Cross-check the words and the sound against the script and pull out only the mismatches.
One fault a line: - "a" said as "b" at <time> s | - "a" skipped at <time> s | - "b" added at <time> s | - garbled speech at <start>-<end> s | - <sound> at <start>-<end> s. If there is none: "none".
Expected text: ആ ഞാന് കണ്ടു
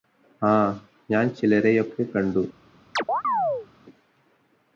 - "ചിലരെയൊക്കെ" added at 1.3 s
- chirp at 3.0-3.7 s